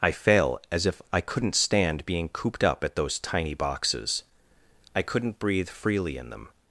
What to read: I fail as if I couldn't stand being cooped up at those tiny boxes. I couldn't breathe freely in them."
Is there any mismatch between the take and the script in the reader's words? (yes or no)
no